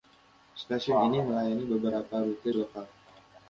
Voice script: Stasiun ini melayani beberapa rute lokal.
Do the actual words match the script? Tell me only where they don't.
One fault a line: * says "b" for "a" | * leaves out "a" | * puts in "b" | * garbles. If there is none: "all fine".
all fine